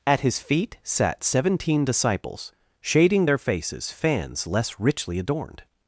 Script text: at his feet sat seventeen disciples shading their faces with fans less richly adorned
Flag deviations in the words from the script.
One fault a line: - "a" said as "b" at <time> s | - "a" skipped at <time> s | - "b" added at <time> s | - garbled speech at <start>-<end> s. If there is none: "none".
- "with" skipped at 3.9 s